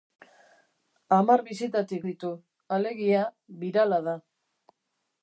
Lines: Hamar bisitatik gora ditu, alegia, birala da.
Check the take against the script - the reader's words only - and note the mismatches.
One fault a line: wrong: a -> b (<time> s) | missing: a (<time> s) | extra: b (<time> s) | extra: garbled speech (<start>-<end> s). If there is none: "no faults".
missing: gora (2.1 s)